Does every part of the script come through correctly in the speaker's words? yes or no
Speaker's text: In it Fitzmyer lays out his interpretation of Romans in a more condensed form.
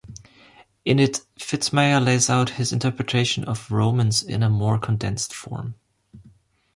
yes